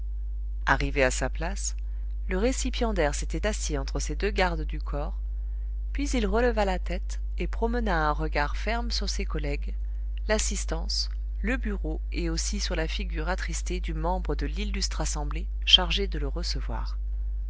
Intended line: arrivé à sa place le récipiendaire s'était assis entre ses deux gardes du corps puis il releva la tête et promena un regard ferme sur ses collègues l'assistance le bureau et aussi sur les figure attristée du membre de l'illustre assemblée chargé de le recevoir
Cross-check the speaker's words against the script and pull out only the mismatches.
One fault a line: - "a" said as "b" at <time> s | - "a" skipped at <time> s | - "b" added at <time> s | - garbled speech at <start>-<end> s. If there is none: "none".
- "les" said as "la" at 12.8 s